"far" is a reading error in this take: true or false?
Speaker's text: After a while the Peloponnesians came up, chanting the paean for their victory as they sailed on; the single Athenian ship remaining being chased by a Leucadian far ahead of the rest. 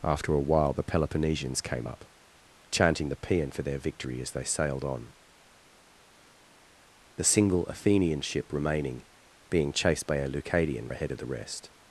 true